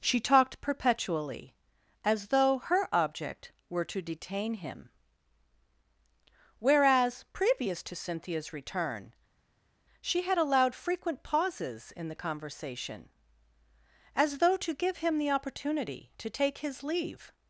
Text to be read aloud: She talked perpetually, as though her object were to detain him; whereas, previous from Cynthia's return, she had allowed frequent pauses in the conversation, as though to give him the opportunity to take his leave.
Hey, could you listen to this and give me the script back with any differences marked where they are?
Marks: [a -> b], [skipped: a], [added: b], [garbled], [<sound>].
She talked perpetually, as though her object were to detain him; whereas, previous [from -> to] Cynthia's return, she had allowed frequent pauses in the conversation, as though to give him the opportunity to take his leave.